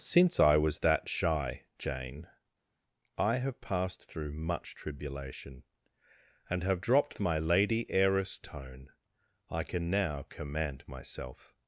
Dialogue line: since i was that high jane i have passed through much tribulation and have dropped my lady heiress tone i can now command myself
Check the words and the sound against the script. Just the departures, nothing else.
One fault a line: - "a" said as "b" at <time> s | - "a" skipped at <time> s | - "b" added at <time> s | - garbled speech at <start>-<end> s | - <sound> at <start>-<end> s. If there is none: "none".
- "high" said as "shy" at 1.1 s